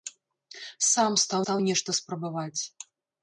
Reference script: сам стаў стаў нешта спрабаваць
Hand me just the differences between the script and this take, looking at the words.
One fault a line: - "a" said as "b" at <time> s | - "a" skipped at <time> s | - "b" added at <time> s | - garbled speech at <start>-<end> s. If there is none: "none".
none